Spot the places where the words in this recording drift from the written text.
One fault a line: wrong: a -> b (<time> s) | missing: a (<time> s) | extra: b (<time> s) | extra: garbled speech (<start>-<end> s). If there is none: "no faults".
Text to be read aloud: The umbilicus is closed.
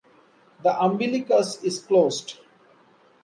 no faults